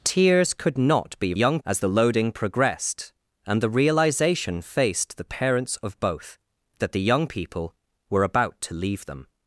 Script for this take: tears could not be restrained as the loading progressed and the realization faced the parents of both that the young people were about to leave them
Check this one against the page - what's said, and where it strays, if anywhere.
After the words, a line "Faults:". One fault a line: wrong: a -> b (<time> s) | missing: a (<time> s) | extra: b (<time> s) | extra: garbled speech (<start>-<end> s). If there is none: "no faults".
tears could not be young as the loading progressed and the realization faced the parents of both that the young people were about to leave them
Faults:
wrong: restrained -> young (1.3 s)